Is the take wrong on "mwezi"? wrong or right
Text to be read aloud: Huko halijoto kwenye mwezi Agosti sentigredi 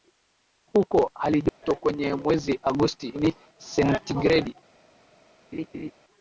right